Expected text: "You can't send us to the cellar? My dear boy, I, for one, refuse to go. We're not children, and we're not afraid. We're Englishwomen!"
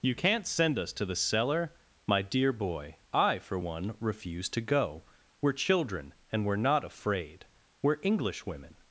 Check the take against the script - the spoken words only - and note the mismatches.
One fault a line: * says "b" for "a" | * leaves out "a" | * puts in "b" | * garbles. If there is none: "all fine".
* leaves out "not"